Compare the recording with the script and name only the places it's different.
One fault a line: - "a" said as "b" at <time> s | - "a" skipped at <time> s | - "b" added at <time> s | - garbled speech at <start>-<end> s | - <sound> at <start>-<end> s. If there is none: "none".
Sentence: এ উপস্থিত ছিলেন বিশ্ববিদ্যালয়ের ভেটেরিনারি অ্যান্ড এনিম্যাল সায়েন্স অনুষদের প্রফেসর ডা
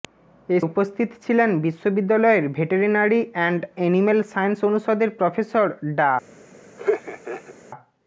- laugh at 6.8-7.5 s